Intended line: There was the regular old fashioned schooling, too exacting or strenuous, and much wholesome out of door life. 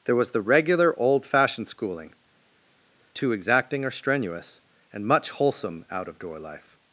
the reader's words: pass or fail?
pass